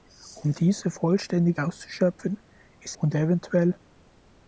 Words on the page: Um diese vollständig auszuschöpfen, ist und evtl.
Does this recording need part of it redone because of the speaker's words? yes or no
no